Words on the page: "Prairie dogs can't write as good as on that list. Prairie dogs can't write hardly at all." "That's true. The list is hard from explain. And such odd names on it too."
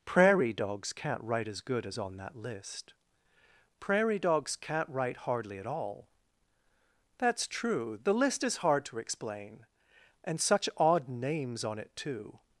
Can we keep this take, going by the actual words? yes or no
no